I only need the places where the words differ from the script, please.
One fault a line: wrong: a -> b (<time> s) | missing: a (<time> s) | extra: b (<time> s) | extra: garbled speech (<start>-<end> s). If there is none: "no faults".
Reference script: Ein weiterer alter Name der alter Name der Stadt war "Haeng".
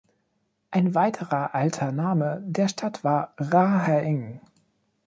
missing: alter Name der (2.7 s)
extra: Ra (3.4 s)